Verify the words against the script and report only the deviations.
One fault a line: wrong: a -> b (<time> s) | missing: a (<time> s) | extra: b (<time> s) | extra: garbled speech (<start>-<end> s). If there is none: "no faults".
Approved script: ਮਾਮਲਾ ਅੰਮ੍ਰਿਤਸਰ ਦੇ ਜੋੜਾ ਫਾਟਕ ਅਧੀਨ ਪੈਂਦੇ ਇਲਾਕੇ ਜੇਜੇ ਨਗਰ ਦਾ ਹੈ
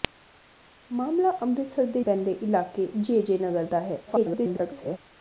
missing: ਜੋੜਾ ਫਾਟਕ ਅਧੀਨ (2.0 s)
extra: garbled speech (4.1-5.0 s)